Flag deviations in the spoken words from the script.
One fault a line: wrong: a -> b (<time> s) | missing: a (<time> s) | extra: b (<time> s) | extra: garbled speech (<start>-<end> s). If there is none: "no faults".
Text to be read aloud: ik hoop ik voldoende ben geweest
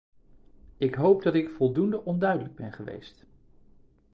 extra: dat (1.2 s)
extra: onduidelijk (2.0 s)